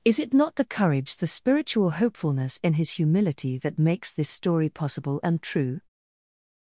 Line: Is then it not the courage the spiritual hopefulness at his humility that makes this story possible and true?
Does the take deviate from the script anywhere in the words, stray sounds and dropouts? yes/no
yes